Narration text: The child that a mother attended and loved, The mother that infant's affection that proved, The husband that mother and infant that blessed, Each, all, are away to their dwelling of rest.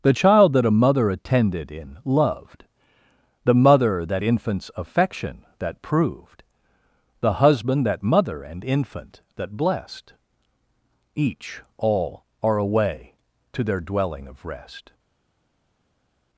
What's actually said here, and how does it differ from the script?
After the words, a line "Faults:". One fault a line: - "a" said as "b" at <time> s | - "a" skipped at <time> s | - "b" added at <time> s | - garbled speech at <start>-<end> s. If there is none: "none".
The child that a mother attended in loved, The mother that infant's affection that proved, The husband that mother and infant that blessed, Each, all, are away to their dwelling of rest.
Faults:
- "and" said as "in" at 1.7 s